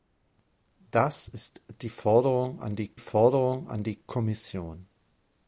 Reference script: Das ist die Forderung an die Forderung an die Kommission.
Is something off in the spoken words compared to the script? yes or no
no